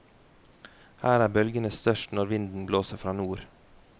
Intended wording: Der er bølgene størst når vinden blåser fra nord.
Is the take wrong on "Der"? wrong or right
wrong